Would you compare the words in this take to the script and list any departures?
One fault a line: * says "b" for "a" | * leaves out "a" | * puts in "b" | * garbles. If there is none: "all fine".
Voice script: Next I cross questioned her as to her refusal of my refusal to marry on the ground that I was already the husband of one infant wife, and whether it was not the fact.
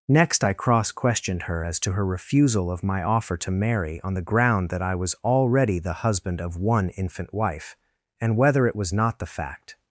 * says "offer" for "refusal"